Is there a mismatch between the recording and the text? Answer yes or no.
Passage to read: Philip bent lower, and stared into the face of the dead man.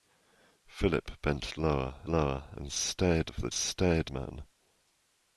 yes